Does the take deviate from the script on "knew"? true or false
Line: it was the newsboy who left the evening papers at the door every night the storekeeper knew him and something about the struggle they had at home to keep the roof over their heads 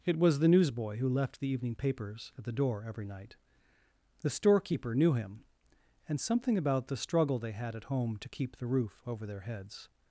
false